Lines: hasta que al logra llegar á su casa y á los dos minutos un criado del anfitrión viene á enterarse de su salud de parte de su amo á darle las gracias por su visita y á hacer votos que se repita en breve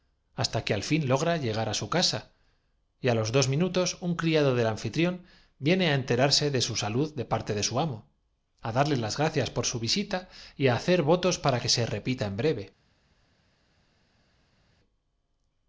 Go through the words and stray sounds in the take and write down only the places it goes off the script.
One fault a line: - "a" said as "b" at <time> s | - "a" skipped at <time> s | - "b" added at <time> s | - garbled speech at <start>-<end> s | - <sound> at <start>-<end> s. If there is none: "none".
- "fin" added at 0.9 s
- "para" added at 11.4 s